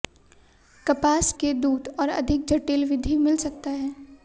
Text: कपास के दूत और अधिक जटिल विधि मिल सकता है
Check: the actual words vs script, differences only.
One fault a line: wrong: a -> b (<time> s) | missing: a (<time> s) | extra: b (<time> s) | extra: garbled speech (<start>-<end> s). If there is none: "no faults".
no faults